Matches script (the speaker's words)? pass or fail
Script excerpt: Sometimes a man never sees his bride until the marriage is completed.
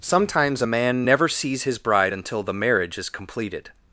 pass